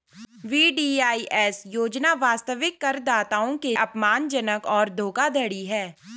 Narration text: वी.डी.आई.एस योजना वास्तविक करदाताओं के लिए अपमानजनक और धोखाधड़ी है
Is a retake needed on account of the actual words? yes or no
yes